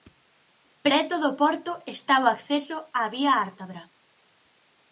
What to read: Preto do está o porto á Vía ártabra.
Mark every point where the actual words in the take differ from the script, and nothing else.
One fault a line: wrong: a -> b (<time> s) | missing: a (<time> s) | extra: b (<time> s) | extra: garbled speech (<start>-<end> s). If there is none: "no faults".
extra: porto (1.4 s)
wrong: porto -> acceso (2.3 s)